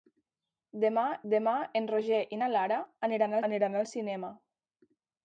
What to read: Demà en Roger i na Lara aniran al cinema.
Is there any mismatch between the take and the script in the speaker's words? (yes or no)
yes